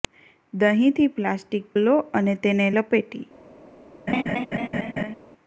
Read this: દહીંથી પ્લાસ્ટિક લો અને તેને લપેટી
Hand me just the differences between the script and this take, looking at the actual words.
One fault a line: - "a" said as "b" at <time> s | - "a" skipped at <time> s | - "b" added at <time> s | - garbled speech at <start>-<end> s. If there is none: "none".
none